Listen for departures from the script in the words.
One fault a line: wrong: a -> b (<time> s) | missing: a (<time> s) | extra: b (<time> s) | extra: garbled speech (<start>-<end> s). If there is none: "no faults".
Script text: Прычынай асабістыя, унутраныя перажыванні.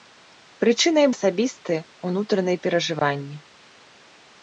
no faults